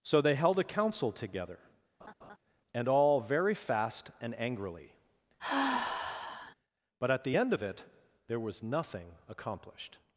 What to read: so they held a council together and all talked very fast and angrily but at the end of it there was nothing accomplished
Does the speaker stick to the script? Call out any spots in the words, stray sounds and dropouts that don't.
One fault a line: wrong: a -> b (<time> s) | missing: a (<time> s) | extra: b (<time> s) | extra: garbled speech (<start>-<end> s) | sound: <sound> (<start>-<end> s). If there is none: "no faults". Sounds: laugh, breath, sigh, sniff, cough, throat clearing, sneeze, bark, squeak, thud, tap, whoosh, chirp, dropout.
sound: laugh (2.0-2.4 s)
missing: talked (3.2 s)
sound: sigh (5.4-6.5 s)